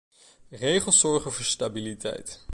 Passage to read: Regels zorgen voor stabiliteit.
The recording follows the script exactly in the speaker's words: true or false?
true